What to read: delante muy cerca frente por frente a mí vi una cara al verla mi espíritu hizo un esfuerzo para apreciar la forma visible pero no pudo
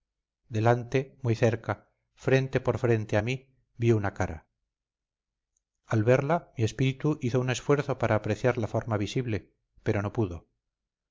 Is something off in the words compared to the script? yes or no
no